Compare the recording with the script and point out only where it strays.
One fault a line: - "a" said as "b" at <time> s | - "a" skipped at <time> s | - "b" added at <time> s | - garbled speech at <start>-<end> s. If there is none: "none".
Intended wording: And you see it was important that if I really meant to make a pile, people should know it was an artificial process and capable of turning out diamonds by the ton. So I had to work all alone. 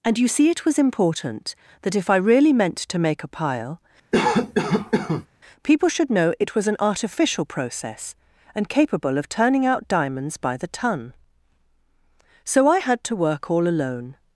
none